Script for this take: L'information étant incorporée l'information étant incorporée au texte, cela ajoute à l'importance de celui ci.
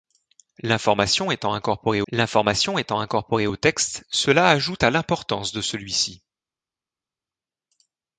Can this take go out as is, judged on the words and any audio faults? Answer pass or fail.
pass